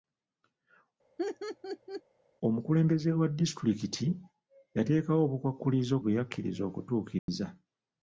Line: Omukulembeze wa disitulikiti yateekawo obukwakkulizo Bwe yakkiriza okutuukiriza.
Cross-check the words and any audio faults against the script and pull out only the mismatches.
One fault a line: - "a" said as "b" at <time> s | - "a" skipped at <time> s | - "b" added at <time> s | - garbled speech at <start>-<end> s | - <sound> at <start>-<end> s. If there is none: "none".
- laugh at 1.2-2.0 s
- dropout at 7.2-7.3 s